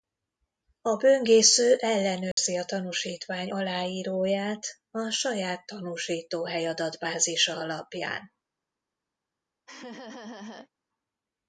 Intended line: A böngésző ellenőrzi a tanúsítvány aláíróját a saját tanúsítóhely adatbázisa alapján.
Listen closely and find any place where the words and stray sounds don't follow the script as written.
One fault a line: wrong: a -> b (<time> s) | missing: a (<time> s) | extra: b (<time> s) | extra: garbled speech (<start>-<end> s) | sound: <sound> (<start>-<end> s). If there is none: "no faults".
sound: dropout (2.3-2.4 s)
sound: laugh (9.7-10.7 s)